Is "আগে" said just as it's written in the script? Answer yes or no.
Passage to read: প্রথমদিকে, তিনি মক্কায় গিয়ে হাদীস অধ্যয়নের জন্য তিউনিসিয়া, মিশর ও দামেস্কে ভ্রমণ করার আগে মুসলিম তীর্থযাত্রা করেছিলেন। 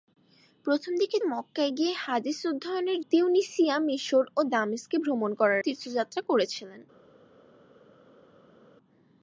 no